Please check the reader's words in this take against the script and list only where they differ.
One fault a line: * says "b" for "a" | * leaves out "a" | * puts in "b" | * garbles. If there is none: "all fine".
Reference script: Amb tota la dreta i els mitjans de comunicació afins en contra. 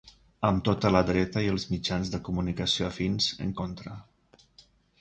all fine